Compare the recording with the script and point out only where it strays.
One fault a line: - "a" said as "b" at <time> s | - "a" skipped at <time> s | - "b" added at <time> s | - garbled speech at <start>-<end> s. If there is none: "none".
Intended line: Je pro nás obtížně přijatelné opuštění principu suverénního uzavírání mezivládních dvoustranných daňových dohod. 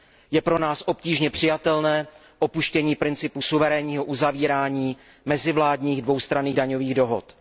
none